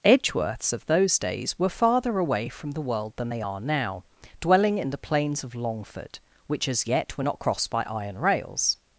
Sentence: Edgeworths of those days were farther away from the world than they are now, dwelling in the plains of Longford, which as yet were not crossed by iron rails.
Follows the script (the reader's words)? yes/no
yes